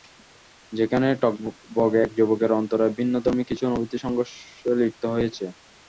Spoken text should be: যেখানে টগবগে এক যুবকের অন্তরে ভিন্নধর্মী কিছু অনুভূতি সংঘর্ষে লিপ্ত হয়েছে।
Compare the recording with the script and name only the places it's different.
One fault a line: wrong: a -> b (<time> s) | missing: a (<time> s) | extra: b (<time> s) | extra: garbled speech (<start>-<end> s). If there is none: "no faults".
no faults